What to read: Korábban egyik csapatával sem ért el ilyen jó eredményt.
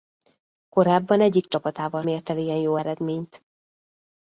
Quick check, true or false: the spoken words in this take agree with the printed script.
false